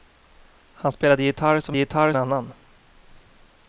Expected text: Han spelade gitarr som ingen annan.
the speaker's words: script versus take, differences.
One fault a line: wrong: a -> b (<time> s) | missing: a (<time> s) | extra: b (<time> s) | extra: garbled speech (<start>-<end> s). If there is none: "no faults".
wrong: ingen -> gitarr (1.8 s)